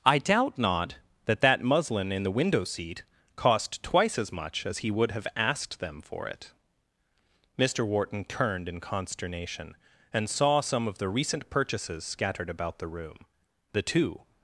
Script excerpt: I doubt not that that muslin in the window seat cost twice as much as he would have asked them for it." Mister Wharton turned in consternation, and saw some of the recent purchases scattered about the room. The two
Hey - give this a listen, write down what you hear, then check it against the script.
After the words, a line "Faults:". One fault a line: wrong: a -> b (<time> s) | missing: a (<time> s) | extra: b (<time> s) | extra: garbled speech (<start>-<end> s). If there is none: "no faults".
I doubt not that that muslin in the window seat cost twice as much as he would have asked them for it." Mister Wharton turned in consternation, and saw some of the recent purchases scattered about the room. The two
Faults:
no faults